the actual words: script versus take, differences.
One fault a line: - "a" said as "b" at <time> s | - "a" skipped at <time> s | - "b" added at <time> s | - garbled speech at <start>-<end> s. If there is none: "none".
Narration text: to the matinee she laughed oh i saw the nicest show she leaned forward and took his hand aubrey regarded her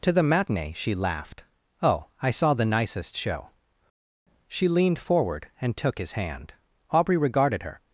none